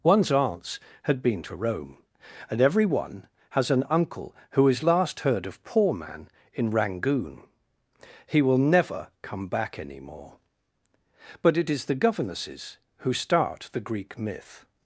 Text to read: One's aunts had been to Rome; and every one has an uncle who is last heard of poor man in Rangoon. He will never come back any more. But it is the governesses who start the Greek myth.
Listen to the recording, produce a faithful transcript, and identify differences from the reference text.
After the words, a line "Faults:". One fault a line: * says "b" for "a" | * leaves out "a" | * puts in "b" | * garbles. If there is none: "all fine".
One's aunts had been to Rome; and every one has an uncle who is last heard of poor man in Rangoon. He will never come back any more. But it is the governesses who start the Greek myth.
Faults:
all fine